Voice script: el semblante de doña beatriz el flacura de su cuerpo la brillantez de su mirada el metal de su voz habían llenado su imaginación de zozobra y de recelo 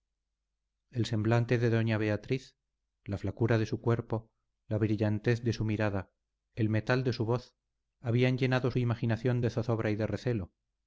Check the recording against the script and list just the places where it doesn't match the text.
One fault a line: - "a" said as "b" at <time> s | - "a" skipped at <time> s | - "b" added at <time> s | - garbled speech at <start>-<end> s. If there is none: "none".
- "el" said as "la" at 3.0 s